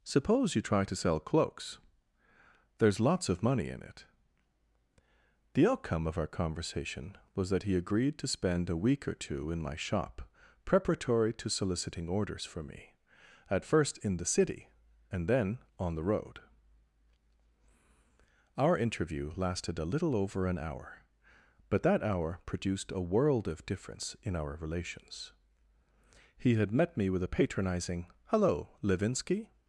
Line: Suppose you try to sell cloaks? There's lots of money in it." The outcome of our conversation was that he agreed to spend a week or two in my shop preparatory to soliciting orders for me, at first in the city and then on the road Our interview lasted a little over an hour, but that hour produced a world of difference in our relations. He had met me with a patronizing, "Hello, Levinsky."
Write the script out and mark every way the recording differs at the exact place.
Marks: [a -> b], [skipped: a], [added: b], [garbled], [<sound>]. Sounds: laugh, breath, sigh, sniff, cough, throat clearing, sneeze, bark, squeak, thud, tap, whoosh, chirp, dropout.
Suppose you try to sell cloaks? There's lots of money in it." The outcome of our conversation was that he agreed to spend a week or two in my shop preparatory to soliciting orders for me, at first in the city and then on the road Our interview lasted a little over an hour, but that hour produced a world of difference in our relations. He had met me with a patronizing, "Hello, Levinsky."